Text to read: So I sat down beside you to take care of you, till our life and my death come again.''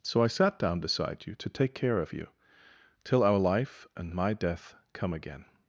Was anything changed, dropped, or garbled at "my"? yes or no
no